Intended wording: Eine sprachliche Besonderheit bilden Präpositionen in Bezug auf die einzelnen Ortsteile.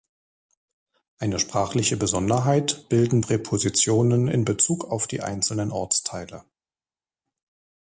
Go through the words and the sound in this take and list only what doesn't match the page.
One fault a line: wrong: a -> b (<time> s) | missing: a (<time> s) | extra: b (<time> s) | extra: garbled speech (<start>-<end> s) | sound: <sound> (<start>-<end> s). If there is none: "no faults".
no faults